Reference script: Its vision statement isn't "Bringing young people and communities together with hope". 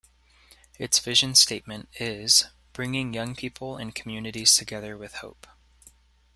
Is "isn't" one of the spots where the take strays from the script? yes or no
yes